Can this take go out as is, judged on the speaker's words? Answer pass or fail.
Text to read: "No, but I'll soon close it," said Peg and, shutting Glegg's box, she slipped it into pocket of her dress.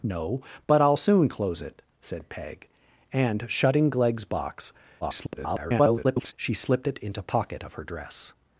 fail